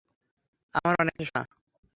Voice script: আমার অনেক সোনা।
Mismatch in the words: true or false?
false